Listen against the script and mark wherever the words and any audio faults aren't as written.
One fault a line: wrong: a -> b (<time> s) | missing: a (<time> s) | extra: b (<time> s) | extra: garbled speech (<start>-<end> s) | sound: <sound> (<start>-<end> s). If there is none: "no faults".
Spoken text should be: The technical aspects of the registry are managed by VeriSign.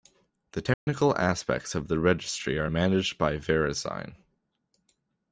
sound: dropout (0.7-0.9 s)